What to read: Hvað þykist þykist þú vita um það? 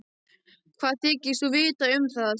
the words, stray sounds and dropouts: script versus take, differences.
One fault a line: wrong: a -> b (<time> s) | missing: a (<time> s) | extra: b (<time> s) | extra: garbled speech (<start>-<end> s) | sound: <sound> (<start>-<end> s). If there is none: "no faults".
missing: þykist (1.4 s)